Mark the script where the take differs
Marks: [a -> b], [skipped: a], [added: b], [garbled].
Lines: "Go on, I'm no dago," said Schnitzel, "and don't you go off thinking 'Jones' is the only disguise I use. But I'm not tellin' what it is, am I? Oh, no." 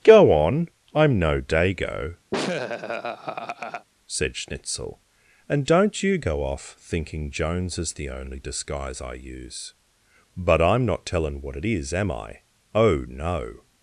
"Go on, I'm no dago," said Schnitzel, "and don't you go off thinking 'Jones' is the only disguise I use. But I'm not tellin' what it is, am I? Oh, no."